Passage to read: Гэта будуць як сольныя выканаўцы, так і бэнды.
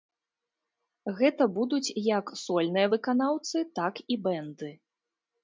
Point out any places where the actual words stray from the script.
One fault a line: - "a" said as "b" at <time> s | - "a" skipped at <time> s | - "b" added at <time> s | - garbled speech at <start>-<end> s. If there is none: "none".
none